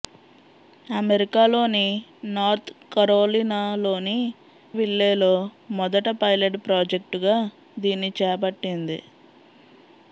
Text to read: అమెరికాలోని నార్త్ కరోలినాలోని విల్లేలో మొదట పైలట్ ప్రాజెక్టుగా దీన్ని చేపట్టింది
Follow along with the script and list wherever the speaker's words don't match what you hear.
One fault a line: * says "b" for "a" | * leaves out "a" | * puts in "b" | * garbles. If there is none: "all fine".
all fine